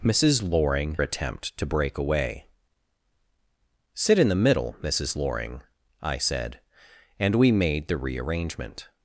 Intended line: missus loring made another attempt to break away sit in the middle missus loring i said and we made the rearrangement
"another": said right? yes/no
no